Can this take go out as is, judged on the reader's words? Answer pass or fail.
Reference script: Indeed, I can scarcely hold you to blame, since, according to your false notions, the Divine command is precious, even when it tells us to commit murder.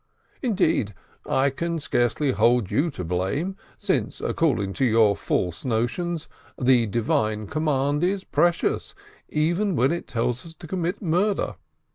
pass